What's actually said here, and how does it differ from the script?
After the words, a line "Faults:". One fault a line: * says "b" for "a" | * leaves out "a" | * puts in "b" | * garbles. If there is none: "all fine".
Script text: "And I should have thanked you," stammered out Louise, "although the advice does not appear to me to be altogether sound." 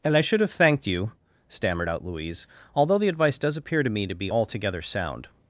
"And I should have thanked you," stammered out Louise, "although the advice does appear to me to be altogether sound."
Faults:
* leaves out "not"